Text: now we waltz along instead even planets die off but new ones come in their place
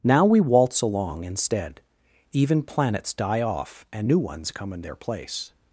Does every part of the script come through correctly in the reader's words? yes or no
no